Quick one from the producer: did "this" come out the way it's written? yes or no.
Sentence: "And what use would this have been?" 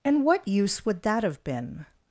no